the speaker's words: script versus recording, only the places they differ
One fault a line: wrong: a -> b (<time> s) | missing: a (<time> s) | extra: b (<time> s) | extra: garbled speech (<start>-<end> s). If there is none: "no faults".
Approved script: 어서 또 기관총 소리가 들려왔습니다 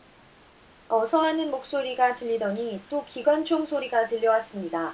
extra: 하는 목소리가 들리더니 (1.2 s)